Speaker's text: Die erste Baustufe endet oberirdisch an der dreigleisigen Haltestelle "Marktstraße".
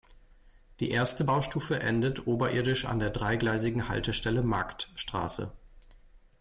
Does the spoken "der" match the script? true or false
true